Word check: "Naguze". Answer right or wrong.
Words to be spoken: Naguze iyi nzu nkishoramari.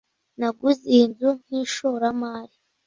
right